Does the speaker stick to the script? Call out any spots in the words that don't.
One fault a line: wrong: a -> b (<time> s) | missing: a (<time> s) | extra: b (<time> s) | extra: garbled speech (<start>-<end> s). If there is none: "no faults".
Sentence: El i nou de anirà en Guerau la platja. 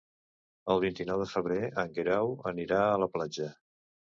extra: vint (0.8 s)
wrong: anirà -> febrer (1.3 s)
extra: anirà a (2.5 s)